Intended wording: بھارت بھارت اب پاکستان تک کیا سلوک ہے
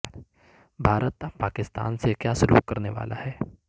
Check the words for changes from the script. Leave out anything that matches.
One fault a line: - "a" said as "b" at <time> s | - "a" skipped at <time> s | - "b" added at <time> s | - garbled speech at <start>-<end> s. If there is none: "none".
- "بھارت" skipped at 1.2 s
- "تک" said as "سے" at 2.0 s
- "کرنے والا" added at 2.7 s